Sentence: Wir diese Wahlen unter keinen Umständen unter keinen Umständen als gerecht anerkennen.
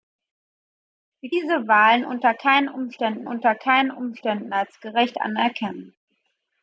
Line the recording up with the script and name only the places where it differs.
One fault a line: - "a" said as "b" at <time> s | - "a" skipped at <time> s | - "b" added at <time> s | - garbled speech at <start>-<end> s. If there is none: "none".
none